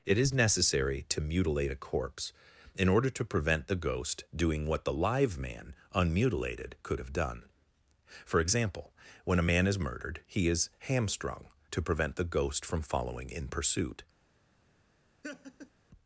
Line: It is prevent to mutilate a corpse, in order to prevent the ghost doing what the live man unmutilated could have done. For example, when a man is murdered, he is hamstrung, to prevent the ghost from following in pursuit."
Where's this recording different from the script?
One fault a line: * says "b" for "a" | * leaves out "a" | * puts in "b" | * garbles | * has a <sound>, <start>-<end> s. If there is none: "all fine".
* says "necessary" for "prevent"
* has a laugh, 15.2-15.7 s